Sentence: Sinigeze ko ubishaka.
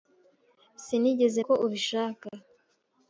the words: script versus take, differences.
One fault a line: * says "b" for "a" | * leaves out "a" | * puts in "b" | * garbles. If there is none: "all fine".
all fine